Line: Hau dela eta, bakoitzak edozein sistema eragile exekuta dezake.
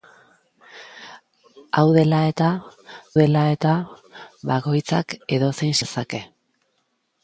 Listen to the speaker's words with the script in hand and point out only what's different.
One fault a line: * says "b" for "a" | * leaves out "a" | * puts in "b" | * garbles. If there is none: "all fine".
* puts in "dela eta"
* leaves out "sistema eragile exekuta"